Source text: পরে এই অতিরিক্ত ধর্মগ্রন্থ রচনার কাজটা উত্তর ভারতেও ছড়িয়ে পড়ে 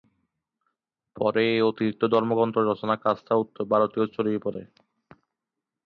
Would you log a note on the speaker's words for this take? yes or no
no